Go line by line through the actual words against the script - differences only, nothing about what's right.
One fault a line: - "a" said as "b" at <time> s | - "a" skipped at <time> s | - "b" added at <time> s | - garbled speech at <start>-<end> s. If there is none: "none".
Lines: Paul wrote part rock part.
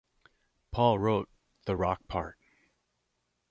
- "part" said as "the" at 1.6 s